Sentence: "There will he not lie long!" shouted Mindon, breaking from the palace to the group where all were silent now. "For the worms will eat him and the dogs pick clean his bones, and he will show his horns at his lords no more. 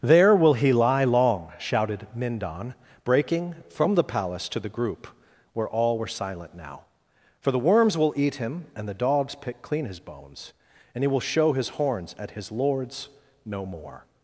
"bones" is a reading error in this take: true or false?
false